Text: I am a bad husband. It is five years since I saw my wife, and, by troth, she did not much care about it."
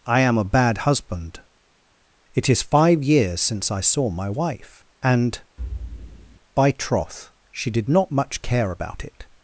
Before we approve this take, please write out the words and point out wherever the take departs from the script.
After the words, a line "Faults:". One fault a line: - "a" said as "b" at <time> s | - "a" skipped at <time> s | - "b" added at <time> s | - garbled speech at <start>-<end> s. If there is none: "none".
I am a bad husband. It is five years since I saw my wife, and, by troth, she did not much care about it."
Faults:
none